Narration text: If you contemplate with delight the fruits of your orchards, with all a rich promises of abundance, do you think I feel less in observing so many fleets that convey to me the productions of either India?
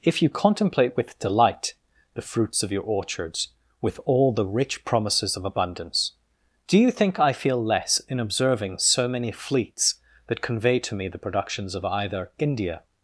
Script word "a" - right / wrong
wrong